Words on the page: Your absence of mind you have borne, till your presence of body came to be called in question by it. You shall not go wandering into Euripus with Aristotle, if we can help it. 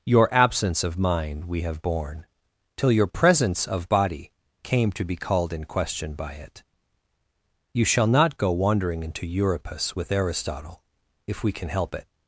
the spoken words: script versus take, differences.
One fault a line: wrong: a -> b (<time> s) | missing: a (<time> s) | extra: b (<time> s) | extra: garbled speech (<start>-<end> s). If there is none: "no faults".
wrong: you -> we (1.4 s)